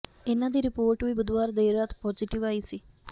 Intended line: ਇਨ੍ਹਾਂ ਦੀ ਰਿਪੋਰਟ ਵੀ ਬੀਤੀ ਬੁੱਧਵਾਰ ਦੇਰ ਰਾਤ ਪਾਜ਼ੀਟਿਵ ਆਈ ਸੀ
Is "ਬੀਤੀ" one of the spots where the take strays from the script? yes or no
yes